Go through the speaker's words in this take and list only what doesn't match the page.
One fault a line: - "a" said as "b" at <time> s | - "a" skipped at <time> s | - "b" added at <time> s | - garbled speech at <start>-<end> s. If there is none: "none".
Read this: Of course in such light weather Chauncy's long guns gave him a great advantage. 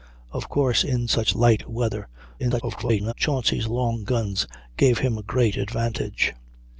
- garbled speech at 2.4-3.1 s